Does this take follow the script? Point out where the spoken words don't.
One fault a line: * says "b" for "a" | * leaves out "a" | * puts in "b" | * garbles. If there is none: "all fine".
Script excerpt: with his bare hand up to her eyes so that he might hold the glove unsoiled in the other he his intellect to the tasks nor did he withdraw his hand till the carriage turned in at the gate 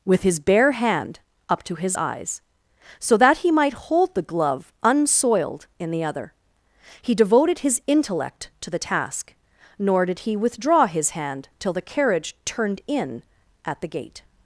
* says "his" for "her"
* puts in "devoted"
* says "task" for "tasks"